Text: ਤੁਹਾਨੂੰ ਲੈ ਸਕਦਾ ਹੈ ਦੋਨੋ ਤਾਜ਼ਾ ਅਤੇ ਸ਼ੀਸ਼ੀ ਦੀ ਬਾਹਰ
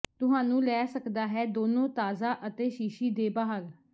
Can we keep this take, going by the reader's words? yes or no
no